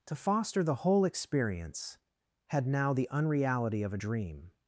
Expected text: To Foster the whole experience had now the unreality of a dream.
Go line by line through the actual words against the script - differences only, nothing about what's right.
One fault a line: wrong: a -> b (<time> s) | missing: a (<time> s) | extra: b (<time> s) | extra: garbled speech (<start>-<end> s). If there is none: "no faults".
no faults